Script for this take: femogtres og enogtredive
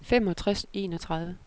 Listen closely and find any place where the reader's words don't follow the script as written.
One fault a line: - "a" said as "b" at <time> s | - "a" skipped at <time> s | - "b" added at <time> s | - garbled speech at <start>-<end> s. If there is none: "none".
none